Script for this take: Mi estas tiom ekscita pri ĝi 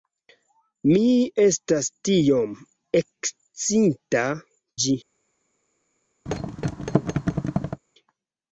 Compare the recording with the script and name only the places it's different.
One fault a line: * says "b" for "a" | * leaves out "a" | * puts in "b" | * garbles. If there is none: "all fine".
* leaves out "pri"